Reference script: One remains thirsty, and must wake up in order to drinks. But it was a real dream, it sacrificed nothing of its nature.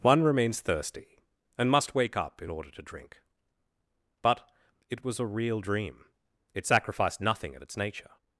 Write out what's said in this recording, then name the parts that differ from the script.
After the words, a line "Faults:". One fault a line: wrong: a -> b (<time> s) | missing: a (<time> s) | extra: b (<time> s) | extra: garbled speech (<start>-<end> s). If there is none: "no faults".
One remains thirsty, and must wake up in order to drink. But it was a real dream, it sacrificed nothing of its nature.
Faults:
wrong: drinks -> drink (2.8 s)